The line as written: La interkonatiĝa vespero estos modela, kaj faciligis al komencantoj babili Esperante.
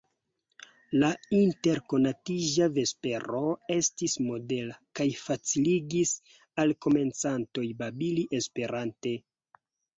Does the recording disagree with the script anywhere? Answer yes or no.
yes